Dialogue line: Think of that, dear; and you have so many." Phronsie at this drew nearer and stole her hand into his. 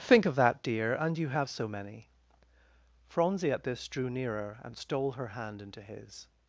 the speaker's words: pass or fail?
pass